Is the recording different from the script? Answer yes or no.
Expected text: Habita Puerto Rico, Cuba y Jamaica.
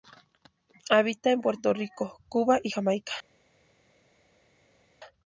yes